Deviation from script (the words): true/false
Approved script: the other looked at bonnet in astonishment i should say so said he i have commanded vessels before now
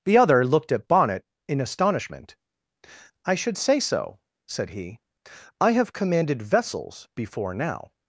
false